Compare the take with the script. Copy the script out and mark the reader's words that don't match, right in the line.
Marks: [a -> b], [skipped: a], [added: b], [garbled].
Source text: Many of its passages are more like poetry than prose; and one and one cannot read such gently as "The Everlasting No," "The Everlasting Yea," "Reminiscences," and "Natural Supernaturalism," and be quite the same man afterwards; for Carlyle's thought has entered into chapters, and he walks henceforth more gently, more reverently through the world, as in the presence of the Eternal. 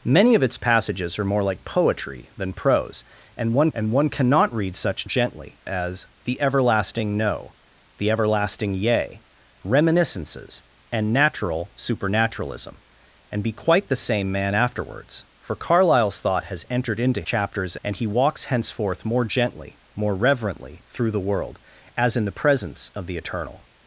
Many of its passages are more like poetry than prose; and one and one cannot read such gently as "The Everlasting No," "The Everlasting Yea," "Reminiscences," and "Natural Supernaturalism," and be quite the same man afterwards; for Carlyle's thought has entered into chapters, and he walks henceforth more gently, more reverently through the world, as in the presence of the Eternal.